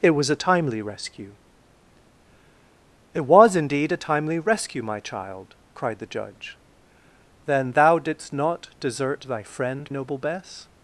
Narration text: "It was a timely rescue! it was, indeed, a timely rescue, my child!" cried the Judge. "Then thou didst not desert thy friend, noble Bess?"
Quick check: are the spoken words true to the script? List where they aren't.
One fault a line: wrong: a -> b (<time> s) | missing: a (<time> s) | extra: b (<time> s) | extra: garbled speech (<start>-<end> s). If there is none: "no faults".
no faults